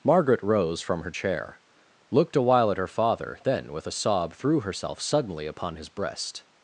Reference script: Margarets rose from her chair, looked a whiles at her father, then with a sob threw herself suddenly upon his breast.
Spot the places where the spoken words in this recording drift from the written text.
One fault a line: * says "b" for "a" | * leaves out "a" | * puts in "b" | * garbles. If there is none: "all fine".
* says "Margaret" for "Margarets"
* says "while" for "whiles"